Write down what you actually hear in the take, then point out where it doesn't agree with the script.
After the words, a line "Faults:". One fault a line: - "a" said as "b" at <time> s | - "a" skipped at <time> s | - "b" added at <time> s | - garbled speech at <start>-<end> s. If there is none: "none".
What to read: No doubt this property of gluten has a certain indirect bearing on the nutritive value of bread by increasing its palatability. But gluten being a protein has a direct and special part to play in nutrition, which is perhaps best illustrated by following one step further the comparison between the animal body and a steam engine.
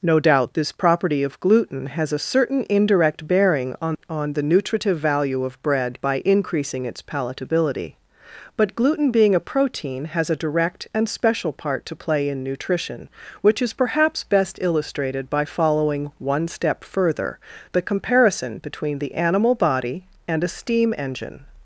No doubt this property of gluten has a certain indirect bearing on on the nutritive value of bread by increasing its palatability. But gluten being a protein has a direct and special part to play in nutrition, which is perhaps best illustrated by following one step further the comparison between the animal body and a steam engine.
Faults:
- "on" added at 4.1 s